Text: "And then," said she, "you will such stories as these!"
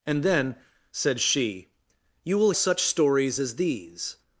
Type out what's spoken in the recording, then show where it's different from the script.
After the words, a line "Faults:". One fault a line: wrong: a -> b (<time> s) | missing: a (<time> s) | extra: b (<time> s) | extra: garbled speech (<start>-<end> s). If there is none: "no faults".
"And then," said she, "you will such stories as these!"
Faults:
no faults